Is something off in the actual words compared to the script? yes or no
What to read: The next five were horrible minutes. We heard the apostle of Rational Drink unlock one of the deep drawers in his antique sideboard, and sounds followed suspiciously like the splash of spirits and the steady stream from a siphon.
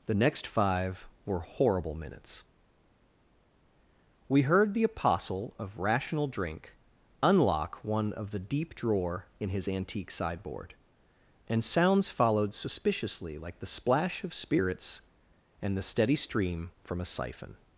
yes